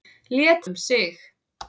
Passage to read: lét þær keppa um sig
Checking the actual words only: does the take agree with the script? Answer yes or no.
no